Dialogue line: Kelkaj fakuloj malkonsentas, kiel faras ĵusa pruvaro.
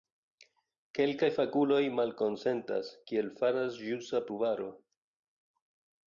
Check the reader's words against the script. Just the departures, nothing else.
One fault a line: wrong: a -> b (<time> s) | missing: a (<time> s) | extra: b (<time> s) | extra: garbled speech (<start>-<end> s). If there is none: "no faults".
no faults